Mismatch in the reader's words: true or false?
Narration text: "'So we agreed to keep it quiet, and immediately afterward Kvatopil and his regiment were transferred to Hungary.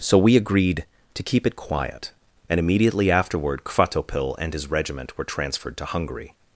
false